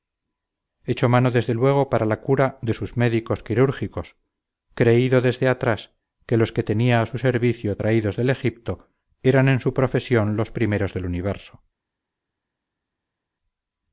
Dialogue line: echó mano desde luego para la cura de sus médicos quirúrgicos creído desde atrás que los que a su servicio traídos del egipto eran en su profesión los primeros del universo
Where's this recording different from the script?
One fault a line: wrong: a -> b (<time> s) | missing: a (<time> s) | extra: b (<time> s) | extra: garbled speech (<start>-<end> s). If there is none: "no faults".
extra: tenía (6.6 s)